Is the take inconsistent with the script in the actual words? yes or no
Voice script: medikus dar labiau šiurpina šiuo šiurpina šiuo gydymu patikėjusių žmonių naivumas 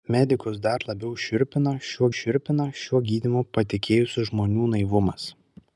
no